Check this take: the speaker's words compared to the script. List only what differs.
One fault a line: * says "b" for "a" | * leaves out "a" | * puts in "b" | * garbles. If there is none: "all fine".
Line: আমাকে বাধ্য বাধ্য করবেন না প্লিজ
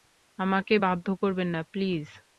* leaves out "বাধ্য"